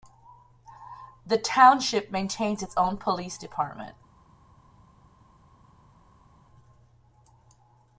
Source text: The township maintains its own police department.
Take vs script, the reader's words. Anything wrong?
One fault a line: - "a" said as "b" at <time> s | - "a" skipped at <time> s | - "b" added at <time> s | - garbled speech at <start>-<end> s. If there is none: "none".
none